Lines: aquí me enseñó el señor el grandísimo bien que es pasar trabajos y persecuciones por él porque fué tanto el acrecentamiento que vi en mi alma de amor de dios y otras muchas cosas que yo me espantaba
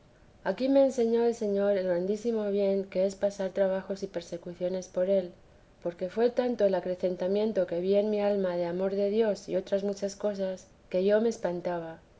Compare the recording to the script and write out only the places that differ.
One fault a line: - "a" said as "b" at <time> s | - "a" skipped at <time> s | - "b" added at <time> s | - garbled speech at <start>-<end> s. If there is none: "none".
none